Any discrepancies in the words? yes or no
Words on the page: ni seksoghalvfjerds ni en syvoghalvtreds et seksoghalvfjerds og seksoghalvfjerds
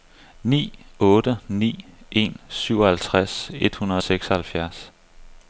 yes